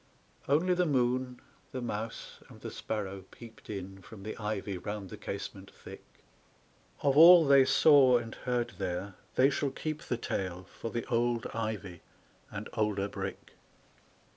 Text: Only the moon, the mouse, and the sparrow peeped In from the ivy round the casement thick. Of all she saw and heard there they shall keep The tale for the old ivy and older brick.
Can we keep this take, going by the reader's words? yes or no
no